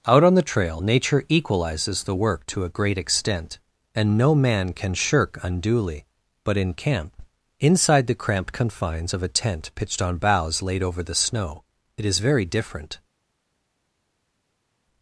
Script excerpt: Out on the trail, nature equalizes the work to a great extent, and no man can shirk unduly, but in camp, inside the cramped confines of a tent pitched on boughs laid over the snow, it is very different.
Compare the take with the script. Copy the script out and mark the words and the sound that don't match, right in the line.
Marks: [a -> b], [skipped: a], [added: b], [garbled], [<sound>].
Out on the trail, nature equalizes the work to a great extent, and no man can shirk unduly, but in camp, inside the cramped confines of a tent pitched on boughs laid over the snow, it is very different.